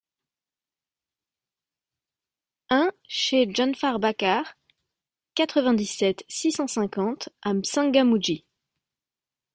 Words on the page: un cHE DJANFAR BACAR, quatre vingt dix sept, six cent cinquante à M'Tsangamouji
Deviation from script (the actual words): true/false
false